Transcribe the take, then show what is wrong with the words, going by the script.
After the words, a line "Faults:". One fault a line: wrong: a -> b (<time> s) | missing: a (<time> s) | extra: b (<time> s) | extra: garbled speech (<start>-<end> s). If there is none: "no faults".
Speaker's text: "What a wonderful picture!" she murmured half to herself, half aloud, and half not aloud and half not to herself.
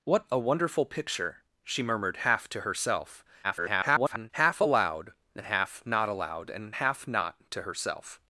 "What a wonderful picture!" she murmured half to herself, [garbled] half aloud, and half not aloud and half not to herself.
Faults:
extra: garbled speech (3.4-4.3 s)